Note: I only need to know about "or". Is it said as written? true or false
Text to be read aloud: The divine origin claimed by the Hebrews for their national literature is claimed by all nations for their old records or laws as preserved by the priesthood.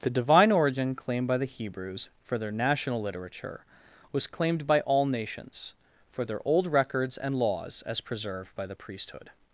false